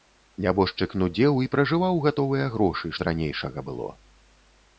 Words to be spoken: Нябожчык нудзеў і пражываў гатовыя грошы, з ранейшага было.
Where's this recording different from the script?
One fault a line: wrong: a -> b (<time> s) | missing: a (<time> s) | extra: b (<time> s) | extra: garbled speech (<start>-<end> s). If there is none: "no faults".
no faults